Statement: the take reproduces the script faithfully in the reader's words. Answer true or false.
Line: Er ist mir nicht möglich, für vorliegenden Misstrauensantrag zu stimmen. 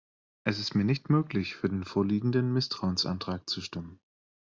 false